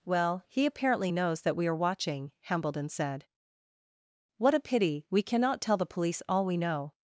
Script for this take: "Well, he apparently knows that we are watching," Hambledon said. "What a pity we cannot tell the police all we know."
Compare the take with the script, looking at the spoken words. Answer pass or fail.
pass